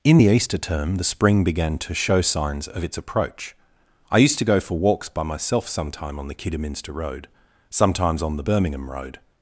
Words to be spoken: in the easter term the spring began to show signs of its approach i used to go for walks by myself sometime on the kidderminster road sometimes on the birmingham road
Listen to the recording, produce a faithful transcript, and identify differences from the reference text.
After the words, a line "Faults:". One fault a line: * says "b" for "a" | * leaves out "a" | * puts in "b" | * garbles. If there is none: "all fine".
in the easter term the spring began to show signs of its approach i used to go for walks by myself sometime on the kidderminster road sometimes on the birmingham road
Faults:
all fine